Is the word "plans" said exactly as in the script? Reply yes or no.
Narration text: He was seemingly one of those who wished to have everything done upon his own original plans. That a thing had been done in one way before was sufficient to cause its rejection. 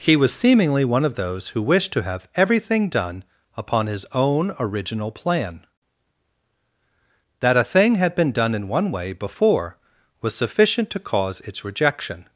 no